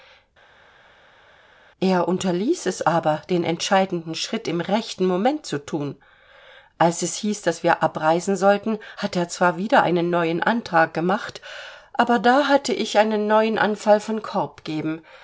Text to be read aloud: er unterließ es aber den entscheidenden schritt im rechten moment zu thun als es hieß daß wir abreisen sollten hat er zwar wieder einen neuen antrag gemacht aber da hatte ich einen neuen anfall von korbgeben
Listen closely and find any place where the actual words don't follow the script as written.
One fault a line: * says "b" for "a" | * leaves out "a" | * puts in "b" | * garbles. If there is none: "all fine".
all fine